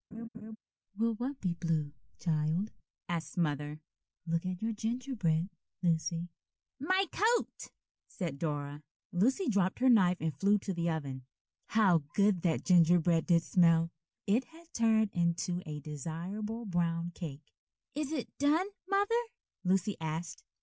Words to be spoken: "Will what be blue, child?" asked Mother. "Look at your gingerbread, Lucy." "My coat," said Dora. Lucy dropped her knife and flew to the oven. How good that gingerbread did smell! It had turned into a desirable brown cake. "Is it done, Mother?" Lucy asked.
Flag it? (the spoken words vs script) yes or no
no